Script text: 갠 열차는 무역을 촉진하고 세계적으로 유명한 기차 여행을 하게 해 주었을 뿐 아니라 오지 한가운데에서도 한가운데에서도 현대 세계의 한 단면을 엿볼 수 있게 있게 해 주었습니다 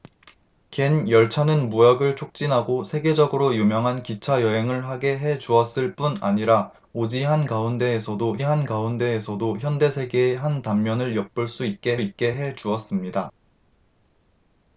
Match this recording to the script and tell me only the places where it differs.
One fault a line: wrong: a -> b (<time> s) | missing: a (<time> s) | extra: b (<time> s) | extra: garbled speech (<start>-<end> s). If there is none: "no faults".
no faults